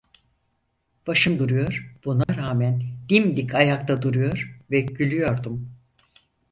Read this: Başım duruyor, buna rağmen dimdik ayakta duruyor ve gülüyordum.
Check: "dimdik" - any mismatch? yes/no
no